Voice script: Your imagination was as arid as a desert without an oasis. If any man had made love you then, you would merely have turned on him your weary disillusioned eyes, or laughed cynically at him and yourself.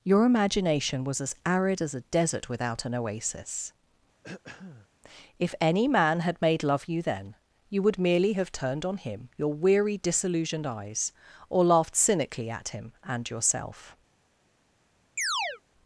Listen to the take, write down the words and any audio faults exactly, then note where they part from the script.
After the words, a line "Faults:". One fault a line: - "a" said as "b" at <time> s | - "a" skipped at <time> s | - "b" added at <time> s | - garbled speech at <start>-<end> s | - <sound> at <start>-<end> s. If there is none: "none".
Your imagination was as arid as a desert without an oasis. If any man had made love you then, you would merely have turned on him your weary disillusioned eyes, or laughed cynically at him and yourself.
Faults:
- throat clearing at 4.2-4.9 s
- chirp at 15.2-15.6 s